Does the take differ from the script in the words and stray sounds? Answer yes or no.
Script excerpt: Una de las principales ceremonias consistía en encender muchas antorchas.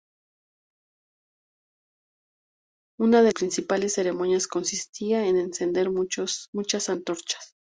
yes